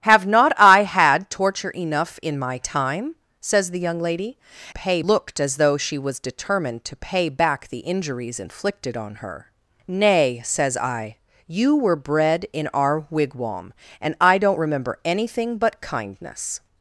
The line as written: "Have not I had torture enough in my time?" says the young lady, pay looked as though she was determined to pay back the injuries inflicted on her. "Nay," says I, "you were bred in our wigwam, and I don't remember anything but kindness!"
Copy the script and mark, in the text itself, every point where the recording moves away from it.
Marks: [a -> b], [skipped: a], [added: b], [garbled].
"Have not I had torture enough in my time?" says the young lady, pay looked as though she was determined to pay back the injuries inflicted on her. "Nay," says I, "you were bred in our wigwam, and I don't remember anything but kindness!"